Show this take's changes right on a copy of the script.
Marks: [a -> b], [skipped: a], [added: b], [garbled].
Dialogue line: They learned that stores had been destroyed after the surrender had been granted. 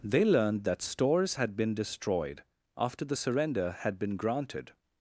They learned that stores had been destroyed after the surrender had been granted.